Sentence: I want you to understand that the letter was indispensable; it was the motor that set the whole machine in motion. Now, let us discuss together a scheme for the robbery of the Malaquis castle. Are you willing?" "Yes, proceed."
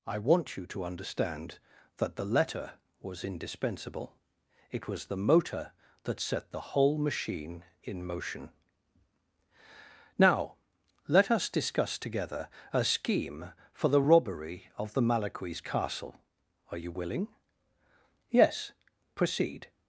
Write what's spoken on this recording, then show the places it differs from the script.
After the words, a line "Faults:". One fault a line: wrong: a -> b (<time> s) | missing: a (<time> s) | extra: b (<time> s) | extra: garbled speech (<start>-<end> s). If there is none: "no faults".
I want you to understand that the letter was indispensable; it was the motor that set the whole machine in motion. Now, let us discuss together a scheme for the robbery of the Malaquis castle. Are you willing?" "Yes, proceed."
Faults:
no faults